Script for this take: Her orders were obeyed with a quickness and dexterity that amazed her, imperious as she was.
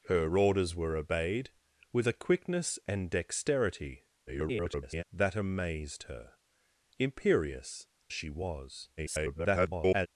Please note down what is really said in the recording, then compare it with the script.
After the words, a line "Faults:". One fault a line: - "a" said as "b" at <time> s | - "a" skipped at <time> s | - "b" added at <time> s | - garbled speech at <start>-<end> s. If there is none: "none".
Her orders were obeyed with a quickness and dexterity [garbled] that amazed her, imperious she was. [garbled]
Faults:
- garbled speech at 4.3-5.0 s
- "as" skipped at 7.9 s
- garbled speech at 9.0-10.1 s